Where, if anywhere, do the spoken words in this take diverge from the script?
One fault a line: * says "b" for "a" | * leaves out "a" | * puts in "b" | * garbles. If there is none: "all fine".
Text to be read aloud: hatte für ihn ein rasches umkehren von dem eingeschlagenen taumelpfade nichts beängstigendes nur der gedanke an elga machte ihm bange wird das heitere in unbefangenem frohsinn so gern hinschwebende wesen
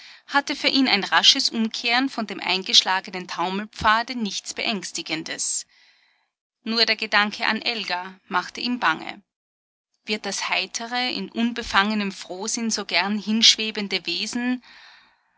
all fine